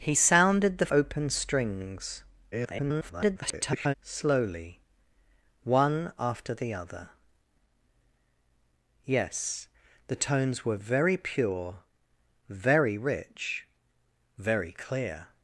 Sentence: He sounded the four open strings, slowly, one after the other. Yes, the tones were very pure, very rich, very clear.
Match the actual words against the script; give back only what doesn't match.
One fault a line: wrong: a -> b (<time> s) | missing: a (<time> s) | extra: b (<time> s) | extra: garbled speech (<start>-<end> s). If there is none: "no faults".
missing: four (0.9 s)
extra: garbled speech (2.5-3.9 s)